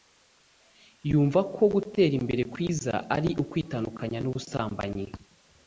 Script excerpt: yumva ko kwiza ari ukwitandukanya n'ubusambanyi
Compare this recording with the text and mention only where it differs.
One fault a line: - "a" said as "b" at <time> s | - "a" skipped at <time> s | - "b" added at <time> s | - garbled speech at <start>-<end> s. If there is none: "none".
- "gutera imbere" added at 1.7 s